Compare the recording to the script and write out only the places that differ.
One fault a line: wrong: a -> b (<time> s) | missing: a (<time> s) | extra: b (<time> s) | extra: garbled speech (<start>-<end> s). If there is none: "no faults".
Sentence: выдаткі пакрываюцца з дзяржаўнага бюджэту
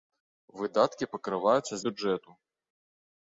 missing: дзяржаўнага (1.8 s)